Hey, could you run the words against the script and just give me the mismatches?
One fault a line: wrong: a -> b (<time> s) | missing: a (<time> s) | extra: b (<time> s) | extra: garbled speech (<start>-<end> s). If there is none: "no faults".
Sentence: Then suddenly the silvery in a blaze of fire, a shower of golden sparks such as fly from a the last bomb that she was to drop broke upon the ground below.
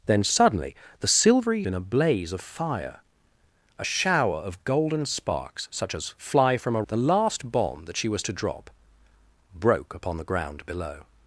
no faults